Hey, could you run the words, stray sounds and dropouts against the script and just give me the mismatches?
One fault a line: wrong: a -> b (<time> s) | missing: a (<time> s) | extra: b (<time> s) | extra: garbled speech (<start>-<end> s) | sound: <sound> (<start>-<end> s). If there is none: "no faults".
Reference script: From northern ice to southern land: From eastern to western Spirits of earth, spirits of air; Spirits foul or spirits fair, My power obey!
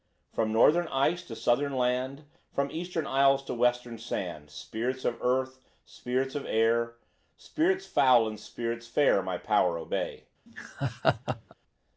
extra: isles (3.0 s)
extra: sand (4.0 s)
wrong: or -> and (8.3 s)
sound: laugh (10.5-11.5 s)